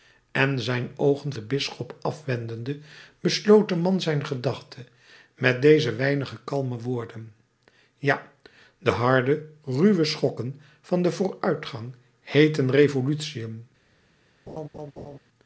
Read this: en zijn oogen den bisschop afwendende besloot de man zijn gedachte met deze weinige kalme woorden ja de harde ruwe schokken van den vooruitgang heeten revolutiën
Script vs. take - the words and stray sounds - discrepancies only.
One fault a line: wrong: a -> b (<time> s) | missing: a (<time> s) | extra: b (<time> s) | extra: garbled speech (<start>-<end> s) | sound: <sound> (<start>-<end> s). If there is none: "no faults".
sound: laugh (14.5-15.2 s)